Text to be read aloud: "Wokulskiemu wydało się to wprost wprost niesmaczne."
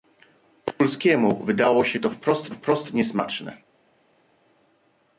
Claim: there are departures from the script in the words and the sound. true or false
false